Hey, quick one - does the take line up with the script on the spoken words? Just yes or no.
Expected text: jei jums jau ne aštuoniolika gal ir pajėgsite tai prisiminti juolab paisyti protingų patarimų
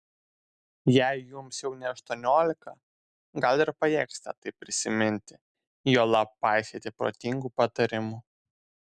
yes